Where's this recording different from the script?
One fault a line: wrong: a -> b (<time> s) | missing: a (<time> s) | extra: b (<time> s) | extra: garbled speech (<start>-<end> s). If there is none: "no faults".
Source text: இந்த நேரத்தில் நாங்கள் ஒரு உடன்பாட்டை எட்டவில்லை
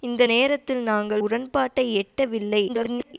missing: ஒரு (1.2 s)
extra: garbled speech (2.7-3.1 s)